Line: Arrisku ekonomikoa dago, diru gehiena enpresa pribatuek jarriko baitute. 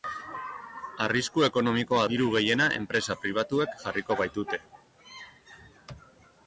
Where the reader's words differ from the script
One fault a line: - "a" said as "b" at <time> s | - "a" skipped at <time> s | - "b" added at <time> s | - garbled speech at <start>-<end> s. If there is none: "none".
- "dago" skipped at 2.0 s